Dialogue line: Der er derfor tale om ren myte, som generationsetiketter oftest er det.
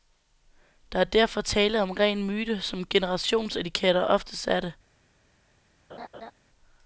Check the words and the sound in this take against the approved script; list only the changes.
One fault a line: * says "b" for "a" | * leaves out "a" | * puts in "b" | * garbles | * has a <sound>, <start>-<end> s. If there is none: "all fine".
* has a laugh, 5.9-6.3 s